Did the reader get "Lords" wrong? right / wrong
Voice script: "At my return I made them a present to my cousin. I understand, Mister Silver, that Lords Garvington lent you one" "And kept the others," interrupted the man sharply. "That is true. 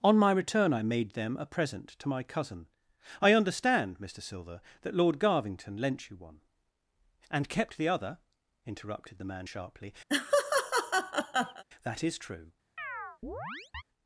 wrong